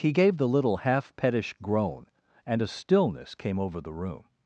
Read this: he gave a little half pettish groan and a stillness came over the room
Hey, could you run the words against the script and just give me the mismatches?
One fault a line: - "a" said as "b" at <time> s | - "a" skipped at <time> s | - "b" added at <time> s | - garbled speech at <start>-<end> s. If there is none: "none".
- "a" said as "the" at 0.4 s